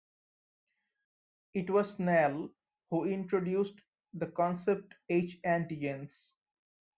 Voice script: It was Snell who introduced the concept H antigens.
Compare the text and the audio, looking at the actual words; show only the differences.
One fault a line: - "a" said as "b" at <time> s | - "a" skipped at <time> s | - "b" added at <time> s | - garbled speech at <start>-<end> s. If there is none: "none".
none